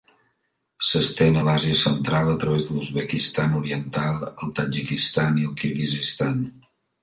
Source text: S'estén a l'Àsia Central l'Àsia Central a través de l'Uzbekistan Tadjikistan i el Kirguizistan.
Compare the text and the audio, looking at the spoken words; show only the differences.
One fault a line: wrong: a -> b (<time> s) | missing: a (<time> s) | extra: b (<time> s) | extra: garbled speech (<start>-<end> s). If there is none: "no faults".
missing: l'Àsia Central (2.3 s)
extra: oriental el (3.6 s)